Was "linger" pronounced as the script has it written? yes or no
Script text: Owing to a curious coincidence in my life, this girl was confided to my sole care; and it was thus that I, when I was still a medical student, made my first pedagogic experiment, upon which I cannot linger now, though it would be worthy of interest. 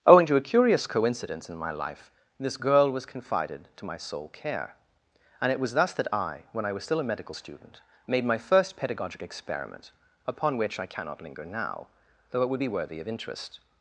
yes